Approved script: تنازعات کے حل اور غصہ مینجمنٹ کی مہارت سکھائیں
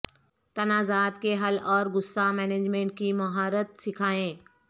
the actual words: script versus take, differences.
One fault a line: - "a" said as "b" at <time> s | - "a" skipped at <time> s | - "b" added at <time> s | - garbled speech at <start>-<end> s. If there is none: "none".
none